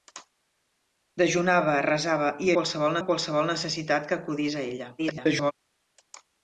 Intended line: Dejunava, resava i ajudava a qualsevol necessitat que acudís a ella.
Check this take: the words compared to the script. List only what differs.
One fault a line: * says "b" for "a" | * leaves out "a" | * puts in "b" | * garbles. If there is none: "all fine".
* says "qualsevol" for "ajudava"
* garbles